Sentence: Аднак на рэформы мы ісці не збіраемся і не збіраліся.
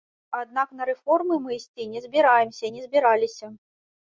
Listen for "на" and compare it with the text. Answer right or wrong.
right